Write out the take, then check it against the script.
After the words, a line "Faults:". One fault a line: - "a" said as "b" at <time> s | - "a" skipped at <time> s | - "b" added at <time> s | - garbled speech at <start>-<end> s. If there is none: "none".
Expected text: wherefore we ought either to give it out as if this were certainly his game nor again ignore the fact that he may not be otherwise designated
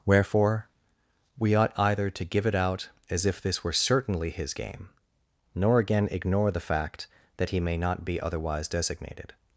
wherefore we ought either to give it out as if this were certainly his game nor again ignore the fact that he may not be otherwise designated
Faults:
none